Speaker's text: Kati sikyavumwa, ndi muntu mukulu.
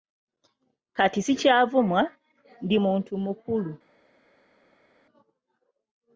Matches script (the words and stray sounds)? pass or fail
pass